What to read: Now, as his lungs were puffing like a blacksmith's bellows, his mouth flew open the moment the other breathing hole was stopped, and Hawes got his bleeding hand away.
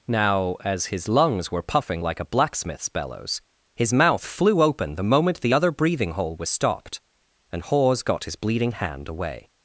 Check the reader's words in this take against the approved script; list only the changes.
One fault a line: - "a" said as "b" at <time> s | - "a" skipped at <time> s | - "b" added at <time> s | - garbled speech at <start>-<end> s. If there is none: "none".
none